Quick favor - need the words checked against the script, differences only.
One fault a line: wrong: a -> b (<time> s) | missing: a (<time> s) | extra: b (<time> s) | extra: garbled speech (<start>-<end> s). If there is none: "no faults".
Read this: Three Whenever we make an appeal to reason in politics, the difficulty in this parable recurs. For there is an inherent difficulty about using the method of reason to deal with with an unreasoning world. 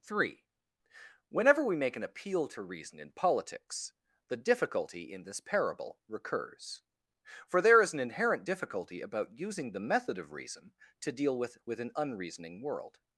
no faults